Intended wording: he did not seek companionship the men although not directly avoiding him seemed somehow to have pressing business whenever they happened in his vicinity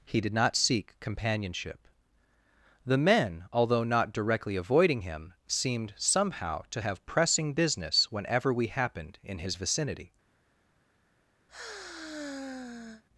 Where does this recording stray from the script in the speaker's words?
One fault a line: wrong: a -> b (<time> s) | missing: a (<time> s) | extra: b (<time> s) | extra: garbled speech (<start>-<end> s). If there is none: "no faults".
wrong: they -> we (8.5 s)